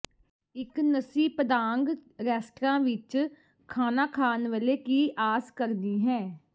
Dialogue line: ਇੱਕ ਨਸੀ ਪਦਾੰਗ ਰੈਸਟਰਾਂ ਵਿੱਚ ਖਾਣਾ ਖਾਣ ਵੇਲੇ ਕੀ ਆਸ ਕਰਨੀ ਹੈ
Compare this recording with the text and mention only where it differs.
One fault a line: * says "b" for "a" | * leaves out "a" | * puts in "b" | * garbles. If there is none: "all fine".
all fine